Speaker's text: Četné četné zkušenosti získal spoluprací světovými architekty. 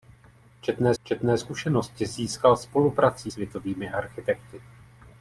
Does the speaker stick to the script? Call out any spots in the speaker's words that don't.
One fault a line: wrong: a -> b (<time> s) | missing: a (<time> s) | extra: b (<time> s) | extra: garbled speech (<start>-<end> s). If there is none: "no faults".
no faults